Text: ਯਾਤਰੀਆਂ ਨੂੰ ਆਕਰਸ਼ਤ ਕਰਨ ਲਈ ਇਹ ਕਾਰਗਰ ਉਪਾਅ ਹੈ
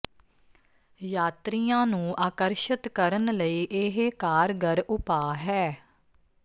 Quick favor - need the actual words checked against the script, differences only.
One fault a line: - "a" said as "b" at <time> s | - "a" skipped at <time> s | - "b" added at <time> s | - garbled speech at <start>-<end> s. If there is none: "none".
none